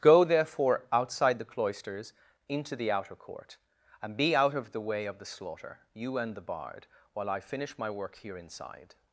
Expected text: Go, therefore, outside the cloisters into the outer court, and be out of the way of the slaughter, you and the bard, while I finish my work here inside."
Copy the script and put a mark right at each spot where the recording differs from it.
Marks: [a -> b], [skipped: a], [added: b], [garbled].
Go, therefore, outside the cloisters into the outer court, and be out of the way of the slaughter, you and the bard, while I finish my work here inside."